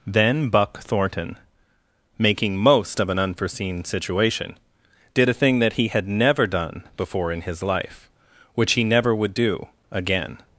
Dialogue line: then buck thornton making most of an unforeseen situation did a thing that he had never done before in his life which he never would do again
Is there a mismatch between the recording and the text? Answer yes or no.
no